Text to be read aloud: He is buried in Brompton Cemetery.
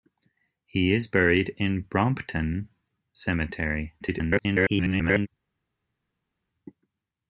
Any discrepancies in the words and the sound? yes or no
yes